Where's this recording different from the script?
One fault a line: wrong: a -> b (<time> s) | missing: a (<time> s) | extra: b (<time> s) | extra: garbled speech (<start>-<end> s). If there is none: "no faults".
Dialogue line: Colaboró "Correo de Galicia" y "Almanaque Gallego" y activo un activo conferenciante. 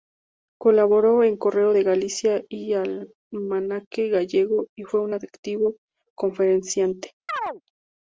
extra: en (1.2 s)
wrong: activo -> fue (4.8 s)